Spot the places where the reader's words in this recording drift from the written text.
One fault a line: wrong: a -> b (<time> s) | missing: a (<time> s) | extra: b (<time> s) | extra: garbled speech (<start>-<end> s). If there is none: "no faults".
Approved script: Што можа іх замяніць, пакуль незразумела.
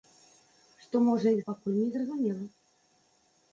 missing: замяніць (1.4 s)